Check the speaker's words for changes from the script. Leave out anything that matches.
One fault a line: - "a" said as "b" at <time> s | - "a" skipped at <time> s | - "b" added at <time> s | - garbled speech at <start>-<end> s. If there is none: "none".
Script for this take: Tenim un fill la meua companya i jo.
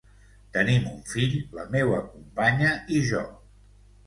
none